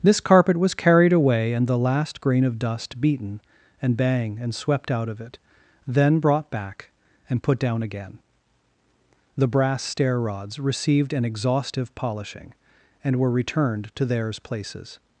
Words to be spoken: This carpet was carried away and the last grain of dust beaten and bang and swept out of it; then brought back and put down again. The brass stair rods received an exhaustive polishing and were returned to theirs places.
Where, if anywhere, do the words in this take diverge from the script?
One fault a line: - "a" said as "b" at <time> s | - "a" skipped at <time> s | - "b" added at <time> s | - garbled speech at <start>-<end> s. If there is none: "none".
none